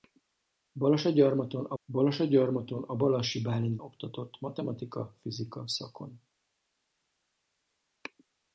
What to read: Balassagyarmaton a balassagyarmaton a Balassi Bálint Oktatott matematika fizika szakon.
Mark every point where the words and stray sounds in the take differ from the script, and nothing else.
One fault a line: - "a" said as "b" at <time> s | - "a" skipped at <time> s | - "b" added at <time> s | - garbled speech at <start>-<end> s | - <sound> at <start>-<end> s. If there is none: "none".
none